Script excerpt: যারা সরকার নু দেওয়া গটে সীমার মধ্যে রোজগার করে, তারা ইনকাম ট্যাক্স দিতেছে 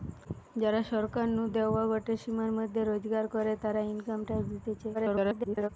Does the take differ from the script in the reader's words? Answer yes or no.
yes